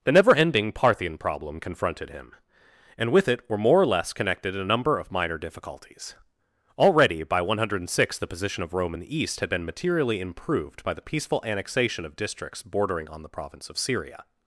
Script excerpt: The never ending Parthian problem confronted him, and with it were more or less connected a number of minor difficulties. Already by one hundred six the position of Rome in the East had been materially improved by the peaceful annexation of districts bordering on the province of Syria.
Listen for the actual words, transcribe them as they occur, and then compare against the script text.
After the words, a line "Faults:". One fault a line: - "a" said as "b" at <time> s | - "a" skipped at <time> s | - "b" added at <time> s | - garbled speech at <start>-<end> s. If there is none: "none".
The never ending Parthian problem confronted him, and with it were more or less connected a number of minor difficulties. Already by one hundred six the position of Rome in the East had been materially improved by the peaceful annexation of districts bordering on the province of Syria.
Faults:
none